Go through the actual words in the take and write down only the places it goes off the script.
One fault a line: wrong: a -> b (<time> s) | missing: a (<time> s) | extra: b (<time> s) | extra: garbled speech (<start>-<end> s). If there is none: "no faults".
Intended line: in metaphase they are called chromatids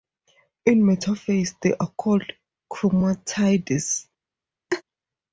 no faults